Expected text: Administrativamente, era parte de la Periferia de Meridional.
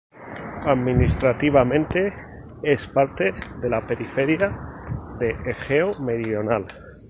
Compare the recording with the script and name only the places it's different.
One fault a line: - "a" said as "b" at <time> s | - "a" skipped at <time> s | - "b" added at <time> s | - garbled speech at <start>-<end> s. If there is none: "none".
- "era" said as "es" at 2.6 s
- "Egeo" added at 5.4 s